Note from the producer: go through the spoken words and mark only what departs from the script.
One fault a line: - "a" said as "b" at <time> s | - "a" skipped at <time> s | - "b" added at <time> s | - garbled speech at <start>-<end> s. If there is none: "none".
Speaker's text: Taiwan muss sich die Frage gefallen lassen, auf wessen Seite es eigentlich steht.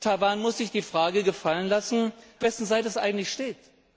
- "auf" skipped at 2.1 s